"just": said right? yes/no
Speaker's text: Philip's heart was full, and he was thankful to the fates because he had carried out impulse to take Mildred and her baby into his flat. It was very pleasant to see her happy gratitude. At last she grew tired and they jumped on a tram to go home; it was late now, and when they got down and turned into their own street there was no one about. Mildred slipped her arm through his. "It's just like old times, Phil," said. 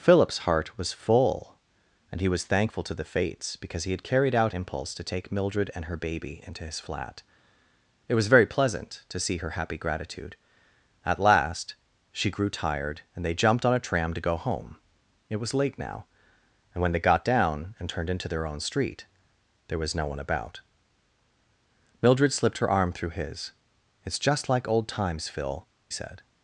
yes